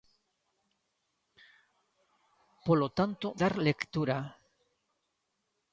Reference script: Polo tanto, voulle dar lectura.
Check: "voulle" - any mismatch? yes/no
yes